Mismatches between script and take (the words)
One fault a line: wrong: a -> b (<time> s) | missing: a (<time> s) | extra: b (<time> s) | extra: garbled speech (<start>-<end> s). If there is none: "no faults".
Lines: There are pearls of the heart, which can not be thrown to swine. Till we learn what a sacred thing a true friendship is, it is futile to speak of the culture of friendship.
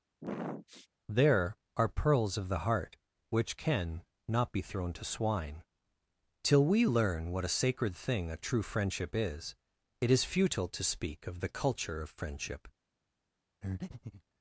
no faults